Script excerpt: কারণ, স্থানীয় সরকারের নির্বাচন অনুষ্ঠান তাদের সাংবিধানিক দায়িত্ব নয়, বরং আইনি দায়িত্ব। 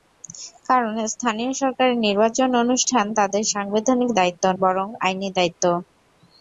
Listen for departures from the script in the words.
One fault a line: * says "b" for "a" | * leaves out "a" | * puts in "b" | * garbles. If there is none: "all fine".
* leaves out "নয়"